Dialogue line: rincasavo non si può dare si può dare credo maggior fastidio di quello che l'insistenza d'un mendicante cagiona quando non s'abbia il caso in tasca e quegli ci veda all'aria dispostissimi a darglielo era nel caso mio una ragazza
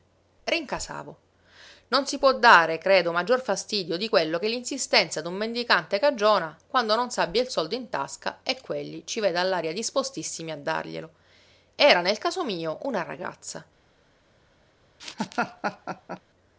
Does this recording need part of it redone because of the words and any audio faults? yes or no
yes